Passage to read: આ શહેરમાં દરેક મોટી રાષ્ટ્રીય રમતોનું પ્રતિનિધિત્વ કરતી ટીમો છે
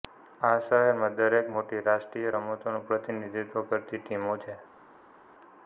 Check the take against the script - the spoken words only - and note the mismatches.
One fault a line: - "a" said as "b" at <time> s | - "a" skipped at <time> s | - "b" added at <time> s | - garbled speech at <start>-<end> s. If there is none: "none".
none